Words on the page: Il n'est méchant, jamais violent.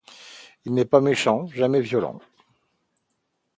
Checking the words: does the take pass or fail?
fail